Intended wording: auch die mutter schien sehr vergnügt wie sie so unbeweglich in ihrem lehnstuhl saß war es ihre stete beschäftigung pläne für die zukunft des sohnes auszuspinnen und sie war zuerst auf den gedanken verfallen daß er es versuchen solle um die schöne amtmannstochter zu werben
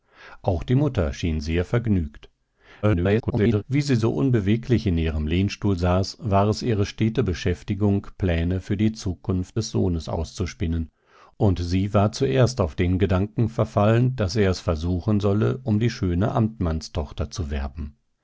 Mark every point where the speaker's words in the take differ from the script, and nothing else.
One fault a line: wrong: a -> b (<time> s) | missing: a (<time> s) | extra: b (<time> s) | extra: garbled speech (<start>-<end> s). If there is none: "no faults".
extra: garbled speech (2.8-3.6 s)